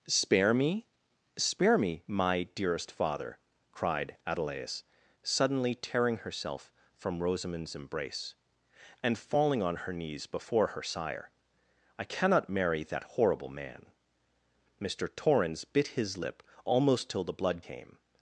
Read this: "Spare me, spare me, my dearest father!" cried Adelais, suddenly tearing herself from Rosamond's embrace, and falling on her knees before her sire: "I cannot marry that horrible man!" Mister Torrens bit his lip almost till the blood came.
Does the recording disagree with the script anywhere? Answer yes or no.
no